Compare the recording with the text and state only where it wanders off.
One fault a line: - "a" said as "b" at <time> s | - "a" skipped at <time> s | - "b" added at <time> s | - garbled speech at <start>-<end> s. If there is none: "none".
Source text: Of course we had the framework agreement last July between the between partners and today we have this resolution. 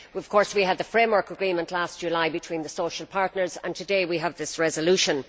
- "between" said as "social" at 2.7 s